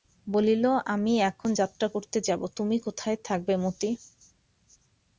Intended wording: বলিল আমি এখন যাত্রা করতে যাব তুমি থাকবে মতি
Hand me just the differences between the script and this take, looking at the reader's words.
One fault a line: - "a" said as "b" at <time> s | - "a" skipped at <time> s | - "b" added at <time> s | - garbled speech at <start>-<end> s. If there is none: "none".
- "কোথায়" added at 2.8 s